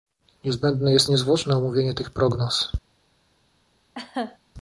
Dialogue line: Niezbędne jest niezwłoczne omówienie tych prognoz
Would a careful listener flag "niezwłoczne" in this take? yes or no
no